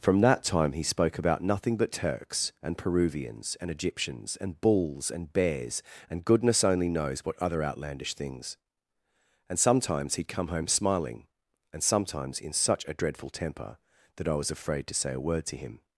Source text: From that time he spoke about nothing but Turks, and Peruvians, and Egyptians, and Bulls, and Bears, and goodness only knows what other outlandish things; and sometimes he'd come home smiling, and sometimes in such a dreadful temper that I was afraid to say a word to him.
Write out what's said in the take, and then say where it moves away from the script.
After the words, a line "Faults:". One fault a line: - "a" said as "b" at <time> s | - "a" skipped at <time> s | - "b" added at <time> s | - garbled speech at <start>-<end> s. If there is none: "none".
From that time he spoke about nothing but Turks, and Peruvians, and Egyptians, and Bulls, and Bears, and goodness only knows what other outlandish things; and sometimes he'd come home smiling, and sometimes in such a dreadful temper that I was afraid to say a word to him.
Faults:
none